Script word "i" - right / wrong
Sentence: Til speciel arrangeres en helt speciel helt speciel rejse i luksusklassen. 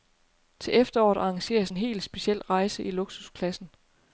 right